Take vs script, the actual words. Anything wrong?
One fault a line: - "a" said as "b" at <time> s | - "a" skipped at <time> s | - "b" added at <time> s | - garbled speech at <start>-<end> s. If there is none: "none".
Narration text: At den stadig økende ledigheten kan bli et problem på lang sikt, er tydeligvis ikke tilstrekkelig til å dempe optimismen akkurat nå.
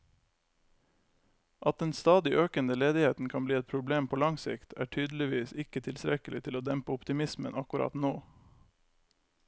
none